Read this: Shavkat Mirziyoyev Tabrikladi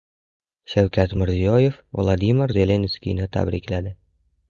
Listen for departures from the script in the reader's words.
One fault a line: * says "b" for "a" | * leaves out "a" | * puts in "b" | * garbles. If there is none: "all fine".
* puts in "Vladimir Zelenskiyni"